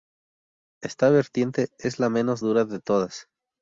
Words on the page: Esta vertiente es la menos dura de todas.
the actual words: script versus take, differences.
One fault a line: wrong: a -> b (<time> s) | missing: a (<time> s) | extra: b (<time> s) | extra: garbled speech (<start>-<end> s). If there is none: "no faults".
no faults